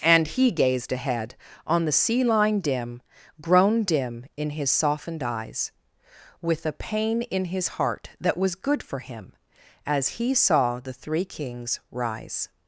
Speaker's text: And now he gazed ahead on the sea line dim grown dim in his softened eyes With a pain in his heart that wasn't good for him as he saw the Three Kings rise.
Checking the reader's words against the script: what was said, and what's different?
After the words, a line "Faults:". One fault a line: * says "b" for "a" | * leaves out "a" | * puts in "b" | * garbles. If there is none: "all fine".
And he gazed ahead on the sea line dim grown dim in his softened eyes With a pain in his heart that was good for him as he saw the Three Kings rise.
Faults:
* leaves out "now"
* says "was" for "wasn't"